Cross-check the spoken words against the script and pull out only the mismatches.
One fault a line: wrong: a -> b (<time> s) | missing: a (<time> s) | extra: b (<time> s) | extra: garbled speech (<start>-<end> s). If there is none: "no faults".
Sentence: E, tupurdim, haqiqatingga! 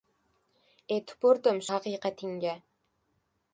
no faults